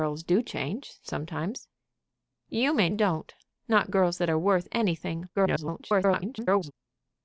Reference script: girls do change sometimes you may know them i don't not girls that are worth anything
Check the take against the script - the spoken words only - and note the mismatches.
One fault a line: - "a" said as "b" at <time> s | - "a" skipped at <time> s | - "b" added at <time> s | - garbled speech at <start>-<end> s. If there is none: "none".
- "know them i" skipped at 2.9 s
- garbled speech at 5.3-6.7 s